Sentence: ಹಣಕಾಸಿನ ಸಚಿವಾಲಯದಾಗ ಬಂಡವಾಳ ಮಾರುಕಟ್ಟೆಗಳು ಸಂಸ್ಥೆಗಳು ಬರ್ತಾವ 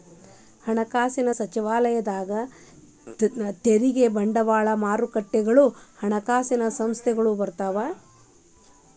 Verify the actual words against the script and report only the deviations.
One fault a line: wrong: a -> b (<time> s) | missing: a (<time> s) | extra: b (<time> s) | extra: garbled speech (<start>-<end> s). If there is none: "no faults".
extra: ತೆರಿಗೆ (3.6 s)
extra: ಹಣಕಾಸಿನ (6.0 s)